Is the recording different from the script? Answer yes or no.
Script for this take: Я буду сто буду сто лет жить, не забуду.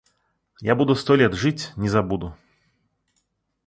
yes